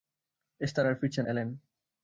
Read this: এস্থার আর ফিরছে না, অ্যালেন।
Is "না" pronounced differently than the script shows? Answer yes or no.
yes